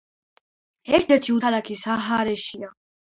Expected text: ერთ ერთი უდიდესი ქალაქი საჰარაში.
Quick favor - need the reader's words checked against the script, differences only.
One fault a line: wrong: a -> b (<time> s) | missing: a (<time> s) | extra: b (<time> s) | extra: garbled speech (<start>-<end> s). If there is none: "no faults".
missing: უდიდესი (1.4 s)